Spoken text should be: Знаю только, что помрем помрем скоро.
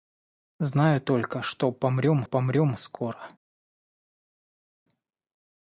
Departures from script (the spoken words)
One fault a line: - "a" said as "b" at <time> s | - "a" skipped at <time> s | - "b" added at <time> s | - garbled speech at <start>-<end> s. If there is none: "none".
none